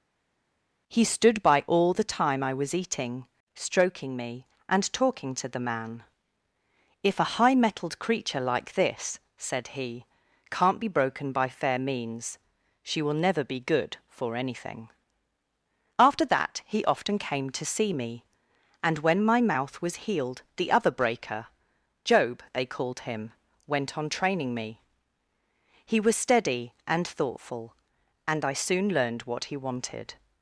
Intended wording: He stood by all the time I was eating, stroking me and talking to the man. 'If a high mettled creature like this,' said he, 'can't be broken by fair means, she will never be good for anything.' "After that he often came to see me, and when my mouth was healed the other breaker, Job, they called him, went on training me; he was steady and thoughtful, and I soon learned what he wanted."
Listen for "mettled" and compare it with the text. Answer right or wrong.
right